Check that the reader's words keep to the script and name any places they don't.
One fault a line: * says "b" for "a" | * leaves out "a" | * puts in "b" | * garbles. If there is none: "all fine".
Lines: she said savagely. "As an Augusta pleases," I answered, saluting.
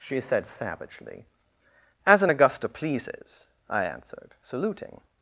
all fine